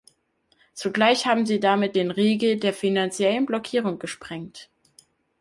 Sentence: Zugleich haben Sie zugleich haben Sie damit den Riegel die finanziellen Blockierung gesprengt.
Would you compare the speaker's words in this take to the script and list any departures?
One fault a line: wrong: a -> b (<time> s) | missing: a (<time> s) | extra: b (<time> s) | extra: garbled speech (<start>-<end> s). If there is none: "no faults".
missing: zugleich haben Sie (1.6 s)
wrong: die -> der (2.6 s)